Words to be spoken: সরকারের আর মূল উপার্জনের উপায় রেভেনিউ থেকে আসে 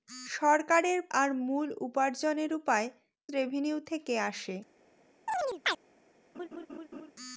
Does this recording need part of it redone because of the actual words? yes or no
no